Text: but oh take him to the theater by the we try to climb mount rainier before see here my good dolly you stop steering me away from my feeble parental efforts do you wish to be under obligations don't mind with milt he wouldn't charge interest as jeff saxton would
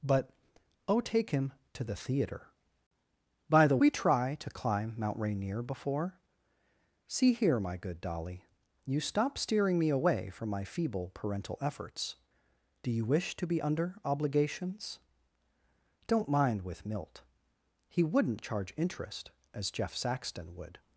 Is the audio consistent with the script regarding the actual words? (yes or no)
yes